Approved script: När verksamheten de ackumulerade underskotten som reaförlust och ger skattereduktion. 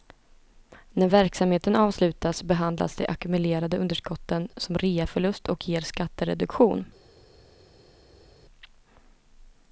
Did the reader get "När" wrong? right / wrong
right